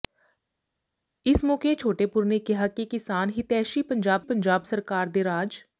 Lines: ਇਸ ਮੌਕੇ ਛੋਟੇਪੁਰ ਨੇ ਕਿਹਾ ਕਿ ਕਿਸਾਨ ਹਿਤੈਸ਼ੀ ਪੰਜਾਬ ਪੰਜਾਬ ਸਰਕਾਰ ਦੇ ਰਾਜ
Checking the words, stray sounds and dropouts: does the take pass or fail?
pass